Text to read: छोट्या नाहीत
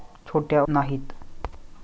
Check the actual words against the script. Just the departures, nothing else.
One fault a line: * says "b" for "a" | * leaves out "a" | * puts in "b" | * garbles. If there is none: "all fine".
all fine